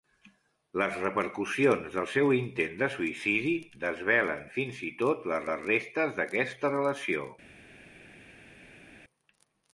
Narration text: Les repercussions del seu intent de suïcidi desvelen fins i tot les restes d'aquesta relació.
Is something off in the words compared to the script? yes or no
yes